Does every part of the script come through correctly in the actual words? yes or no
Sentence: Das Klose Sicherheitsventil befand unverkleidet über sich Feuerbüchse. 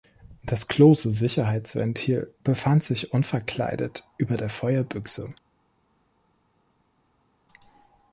no